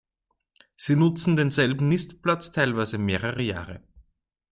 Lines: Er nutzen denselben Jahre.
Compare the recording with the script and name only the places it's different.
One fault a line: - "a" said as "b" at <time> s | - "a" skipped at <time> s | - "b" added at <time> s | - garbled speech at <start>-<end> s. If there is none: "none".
- "Er" said as "Sie" at 0.8 s
- "Nistplatz teilweise mehrere" added at 1.9 s